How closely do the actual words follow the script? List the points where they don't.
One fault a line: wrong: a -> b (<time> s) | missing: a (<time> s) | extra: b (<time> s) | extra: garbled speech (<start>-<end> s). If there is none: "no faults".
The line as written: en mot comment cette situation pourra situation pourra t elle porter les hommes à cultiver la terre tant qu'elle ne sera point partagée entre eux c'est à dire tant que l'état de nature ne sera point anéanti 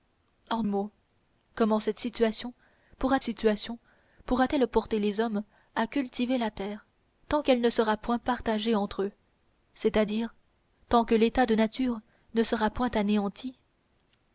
no faults